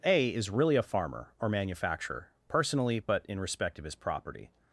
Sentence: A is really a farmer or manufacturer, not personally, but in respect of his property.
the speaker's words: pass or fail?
fail